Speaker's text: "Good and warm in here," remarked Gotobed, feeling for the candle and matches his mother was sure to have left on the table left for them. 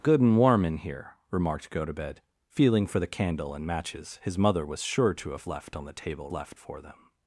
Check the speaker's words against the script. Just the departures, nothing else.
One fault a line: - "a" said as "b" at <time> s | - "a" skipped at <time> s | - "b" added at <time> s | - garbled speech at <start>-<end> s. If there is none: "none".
none